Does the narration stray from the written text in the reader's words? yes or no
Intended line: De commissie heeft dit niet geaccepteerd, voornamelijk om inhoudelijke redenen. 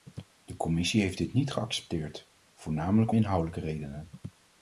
yes